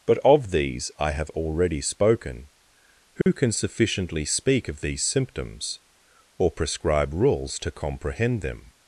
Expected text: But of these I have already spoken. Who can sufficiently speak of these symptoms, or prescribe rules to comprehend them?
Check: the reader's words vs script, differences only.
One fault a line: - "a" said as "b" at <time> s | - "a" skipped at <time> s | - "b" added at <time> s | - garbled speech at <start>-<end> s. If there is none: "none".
none